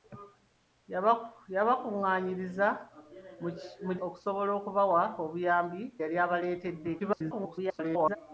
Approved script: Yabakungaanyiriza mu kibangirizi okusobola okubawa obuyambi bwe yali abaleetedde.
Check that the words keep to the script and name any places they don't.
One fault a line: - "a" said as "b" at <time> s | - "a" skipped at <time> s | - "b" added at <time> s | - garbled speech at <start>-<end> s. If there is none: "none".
- "kibangirizi" skipped at 3.9 s
- "bwe" skipped at 5.8 s
- garbled speech at 7.0-8.2 s